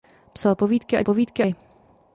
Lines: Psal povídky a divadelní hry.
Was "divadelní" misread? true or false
true